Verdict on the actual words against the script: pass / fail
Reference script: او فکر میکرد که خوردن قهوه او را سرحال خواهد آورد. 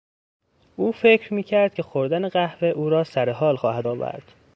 pass